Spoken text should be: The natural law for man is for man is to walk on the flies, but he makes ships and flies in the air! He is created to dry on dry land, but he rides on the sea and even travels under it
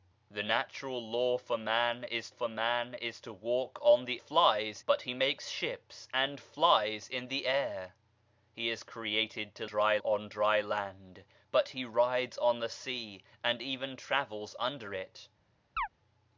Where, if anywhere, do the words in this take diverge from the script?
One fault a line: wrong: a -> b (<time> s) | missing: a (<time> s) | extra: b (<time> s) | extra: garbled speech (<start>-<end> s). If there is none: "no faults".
no faults